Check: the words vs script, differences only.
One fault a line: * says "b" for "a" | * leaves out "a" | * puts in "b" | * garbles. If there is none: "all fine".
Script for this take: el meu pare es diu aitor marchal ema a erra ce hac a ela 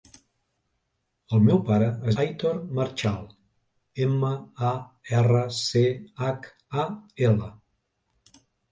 * leaves out "diu"